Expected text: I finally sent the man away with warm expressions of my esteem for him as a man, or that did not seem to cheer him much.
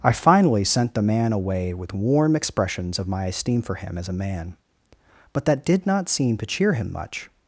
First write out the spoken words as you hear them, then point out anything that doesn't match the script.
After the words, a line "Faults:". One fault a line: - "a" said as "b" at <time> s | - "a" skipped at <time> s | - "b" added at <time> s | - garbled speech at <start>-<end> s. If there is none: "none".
I finally sent the man away with warm expressions of my esteem for him as a man, but that did not seem to cheer him much.
Faults:
- "or" said as "but" at 5.3 s